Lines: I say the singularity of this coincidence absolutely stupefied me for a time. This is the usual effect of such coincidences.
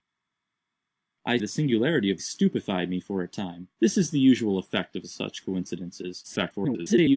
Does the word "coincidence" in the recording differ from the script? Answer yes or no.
yes